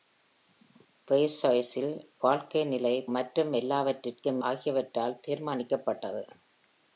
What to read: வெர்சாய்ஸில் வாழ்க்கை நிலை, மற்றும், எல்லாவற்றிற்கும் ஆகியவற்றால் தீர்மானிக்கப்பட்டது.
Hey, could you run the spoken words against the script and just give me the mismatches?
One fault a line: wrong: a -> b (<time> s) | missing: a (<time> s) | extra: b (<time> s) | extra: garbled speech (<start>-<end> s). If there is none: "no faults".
no faults